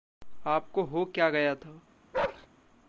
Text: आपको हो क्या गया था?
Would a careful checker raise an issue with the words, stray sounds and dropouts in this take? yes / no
yes